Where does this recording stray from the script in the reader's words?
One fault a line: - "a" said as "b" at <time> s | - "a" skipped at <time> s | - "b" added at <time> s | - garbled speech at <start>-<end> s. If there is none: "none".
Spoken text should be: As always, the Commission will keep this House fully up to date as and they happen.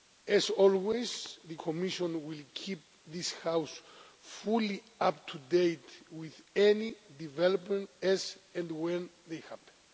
- "with any developments" added at 6.1 s
- "when" added at 8.7 s